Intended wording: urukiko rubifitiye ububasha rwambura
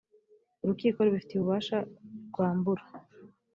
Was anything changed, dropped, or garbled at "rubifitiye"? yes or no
no